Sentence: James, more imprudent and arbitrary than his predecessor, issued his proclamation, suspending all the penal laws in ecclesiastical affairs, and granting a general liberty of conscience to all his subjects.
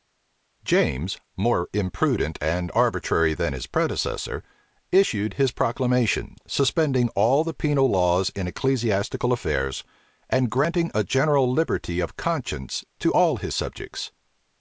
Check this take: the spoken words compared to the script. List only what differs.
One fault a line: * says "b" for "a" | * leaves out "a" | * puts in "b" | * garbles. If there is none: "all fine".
all fine